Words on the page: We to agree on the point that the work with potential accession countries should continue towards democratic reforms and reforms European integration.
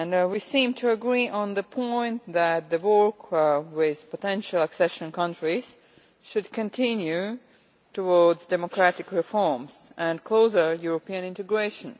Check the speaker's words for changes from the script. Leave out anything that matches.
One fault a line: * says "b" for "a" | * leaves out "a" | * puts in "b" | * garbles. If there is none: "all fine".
* puts in "seem"
* says "closer" for "reforms"